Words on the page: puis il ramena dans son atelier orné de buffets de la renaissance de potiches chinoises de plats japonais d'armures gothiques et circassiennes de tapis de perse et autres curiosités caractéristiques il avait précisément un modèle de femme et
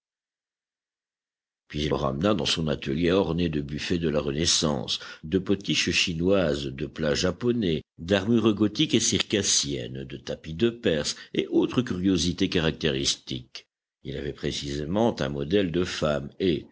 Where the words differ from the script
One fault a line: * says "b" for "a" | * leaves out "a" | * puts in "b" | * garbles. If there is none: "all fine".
all fine